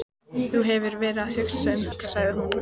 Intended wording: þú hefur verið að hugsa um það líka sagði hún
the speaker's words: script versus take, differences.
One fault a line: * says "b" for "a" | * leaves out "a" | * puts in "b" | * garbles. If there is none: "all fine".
* leaves out "það"